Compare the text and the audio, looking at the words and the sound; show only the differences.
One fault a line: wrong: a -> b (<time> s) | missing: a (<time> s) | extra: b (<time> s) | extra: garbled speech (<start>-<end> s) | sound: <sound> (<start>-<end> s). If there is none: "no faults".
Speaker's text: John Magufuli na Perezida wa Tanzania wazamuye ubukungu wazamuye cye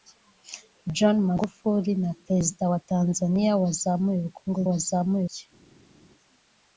no faults